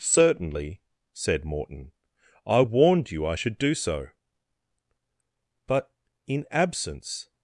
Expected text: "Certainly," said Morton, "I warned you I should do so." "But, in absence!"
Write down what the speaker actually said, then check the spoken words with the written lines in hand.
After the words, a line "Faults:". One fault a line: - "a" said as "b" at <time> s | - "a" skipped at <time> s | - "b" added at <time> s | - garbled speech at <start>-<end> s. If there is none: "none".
"Certainly," said Morton, "I warned you I should do so." "But, in absence!"
Faults:
none